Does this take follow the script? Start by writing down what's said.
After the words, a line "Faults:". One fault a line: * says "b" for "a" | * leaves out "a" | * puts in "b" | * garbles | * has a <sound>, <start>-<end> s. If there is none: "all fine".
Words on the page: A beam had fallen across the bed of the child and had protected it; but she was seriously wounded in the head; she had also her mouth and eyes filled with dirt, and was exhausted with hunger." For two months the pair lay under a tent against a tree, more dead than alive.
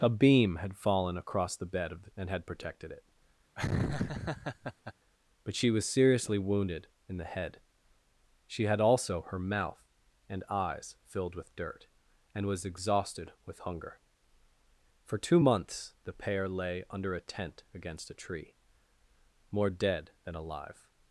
A beam had fallen across the bed of the and had protected it; but she was seriously wounded in the head; she had also her mouth and eyes filled with dirt, and was exhausted with hunger." For two months the pair lay under a tent against a tree, more dead than alive.
Faults:
* leaves out "child"
* has a laugh, 3.6-4.9 s